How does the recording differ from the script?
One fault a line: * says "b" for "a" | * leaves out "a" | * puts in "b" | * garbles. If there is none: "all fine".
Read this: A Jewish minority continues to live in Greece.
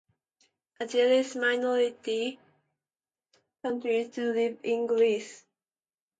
all fine